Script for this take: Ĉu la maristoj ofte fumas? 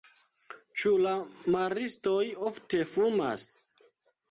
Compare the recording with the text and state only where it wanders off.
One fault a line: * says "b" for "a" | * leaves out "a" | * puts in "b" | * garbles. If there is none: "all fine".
all fine